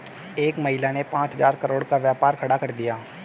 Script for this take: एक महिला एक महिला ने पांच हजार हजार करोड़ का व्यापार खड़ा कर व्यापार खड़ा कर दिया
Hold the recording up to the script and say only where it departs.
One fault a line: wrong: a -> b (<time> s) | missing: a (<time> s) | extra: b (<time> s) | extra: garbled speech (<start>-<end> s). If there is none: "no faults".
missing: एक महिला (0.9 s)
missing: हजार (1.5 s)
missing: व्यापार खड़ा कर (2.7 s)